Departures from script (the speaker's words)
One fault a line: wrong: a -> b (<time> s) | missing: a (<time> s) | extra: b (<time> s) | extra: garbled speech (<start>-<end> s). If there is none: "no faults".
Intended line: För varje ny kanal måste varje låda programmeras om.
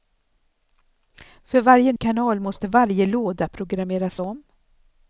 missing: ny (1.9 s)